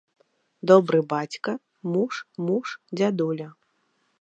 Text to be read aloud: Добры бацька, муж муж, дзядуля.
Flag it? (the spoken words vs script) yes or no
no